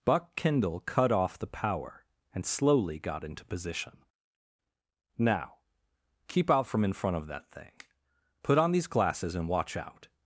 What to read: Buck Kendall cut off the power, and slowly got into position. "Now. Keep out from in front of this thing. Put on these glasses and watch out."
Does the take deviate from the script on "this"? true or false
true